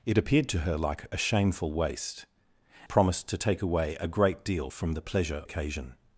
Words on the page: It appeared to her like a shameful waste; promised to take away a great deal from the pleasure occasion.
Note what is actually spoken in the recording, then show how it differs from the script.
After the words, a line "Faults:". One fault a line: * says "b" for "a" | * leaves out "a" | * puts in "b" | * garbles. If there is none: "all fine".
It appeared to her like a shameful waste; promised to take away a great deal from the pleasure occasion.
Faults:
all fine